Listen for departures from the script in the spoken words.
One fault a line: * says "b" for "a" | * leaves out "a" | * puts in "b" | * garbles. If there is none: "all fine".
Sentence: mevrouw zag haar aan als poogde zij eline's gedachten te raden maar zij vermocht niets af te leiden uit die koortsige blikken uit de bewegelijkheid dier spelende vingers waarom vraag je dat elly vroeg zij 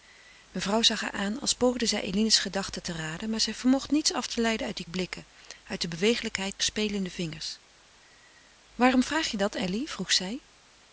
* leaves out "koortsige"
* leaves out "dier"